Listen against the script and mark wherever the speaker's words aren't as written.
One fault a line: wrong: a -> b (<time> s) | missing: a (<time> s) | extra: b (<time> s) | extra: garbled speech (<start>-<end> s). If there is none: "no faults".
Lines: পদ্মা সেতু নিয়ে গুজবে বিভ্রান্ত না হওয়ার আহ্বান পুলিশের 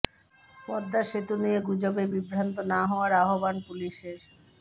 no faults